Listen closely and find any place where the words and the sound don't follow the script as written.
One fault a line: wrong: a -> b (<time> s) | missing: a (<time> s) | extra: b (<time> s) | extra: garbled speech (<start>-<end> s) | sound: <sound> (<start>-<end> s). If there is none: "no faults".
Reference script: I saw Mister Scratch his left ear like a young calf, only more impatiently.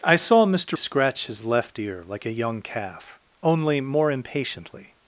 no faults